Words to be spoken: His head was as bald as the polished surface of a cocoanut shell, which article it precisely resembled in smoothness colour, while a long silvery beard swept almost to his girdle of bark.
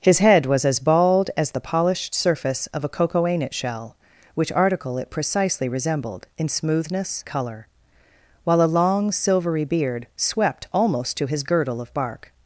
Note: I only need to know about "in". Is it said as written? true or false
true